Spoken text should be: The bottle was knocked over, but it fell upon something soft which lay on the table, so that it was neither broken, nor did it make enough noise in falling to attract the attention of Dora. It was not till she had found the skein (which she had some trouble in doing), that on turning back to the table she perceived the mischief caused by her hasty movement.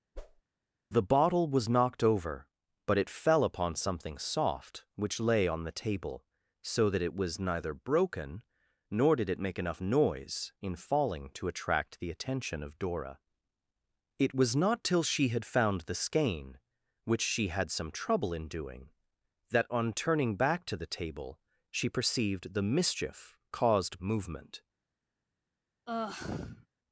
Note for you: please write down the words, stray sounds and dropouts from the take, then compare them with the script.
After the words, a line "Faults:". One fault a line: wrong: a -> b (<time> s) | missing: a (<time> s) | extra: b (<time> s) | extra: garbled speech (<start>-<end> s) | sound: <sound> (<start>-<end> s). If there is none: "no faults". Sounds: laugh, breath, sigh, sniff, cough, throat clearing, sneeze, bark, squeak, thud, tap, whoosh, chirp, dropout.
The bottle was knocked over, but it fell upon something soft which lay on the table, so that it was neither broken, nor did it make enough noise in falling to attract the attention of Dora. It was not till she had found the skein (which she had some trouble in doing), that on turning back to the table she perceived the mischief caused movement.
Faults:
sound: whoosh (0.1-0.4 s)
missing: by her hasty (24.0 s)
sound: sigh (25.9-26.7 s)